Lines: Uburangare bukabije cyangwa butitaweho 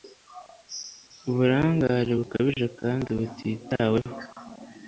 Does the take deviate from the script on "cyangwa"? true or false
true